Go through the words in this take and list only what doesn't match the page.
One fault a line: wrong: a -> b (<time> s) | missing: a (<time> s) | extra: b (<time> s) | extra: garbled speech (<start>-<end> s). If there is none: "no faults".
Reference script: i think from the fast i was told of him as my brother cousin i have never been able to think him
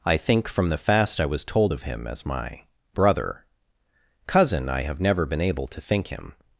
no faults